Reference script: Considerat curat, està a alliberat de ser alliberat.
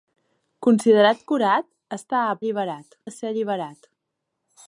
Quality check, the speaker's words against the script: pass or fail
pass